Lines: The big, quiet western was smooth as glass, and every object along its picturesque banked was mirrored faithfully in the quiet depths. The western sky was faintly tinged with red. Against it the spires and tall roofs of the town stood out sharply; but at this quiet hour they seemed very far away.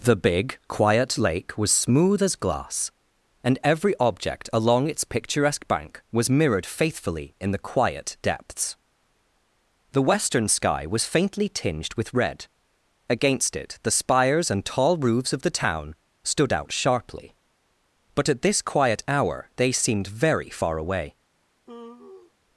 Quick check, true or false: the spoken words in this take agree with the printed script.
false